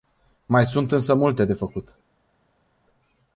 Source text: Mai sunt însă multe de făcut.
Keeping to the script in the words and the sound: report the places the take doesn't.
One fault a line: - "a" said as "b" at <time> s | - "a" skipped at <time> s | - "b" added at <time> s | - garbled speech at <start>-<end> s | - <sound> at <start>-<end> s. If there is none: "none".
none